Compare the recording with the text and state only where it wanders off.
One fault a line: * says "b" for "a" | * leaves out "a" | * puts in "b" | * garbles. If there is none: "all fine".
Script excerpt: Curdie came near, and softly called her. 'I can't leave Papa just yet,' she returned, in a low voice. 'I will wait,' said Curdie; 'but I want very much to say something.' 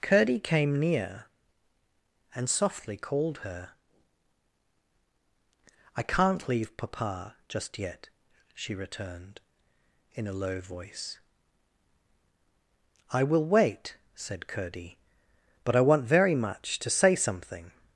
all fine